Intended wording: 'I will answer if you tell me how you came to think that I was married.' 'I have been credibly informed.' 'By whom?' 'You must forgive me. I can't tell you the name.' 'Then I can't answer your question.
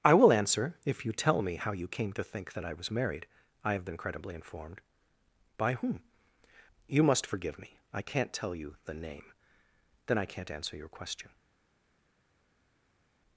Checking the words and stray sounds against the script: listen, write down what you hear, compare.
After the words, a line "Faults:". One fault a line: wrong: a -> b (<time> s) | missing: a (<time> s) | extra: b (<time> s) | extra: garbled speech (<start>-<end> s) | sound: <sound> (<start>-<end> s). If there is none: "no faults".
'I will answer if you tell me how you came to think that I was married.' 'I have been credibly informed.' 'By whom?' 'You must forgive me. I can't tell you the name.' 'Then I can't answer your question.
Faults:
no faults